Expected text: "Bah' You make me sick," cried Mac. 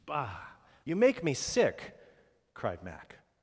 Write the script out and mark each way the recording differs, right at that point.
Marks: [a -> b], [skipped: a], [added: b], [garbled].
"Bah' You make me sick," cried Mac.